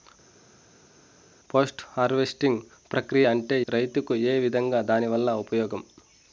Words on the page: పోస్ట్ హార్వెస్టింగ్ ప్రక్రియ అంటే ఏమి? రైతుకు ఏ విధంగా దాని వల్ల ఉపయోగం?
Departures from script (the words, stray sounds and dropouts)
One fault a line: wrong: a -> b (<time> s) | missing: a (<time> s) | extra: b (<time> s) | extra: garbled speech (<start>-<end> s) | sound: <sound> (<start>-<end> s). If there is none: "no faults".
missing: ఏమి (3.6 s)